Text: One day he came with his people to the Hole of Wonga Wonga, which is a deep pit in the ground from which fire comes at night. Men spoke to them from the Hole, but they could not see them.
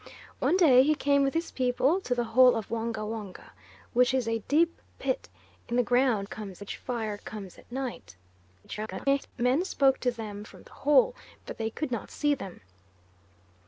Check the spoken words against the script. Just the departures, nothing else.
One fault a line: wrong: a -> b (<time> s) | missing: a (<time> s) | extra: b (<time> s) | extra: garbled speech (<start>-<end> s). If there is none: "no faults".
wrong: from -> comes (6.2 s)
extra: garbled speech (8.6-9.3 s)